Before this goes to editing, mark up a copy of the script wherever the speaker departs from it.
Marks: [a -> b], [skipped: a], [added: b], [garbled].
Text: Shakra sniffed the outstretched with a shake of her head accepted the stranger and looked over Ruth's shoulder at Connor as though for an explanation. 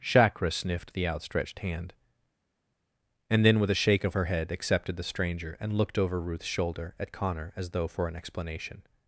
Shakra sniffed the outstretched [added: hand and then] with a shake of her head accepted the stranger and looked over Ruth's shoulder at Connor as though for an explanation.